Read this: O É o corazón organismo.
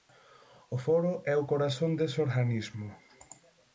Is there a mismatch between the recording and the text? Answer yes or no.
yes